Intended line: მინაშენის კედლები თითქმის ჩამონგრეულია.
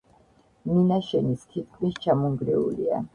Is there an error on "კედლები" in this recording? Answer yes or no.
yes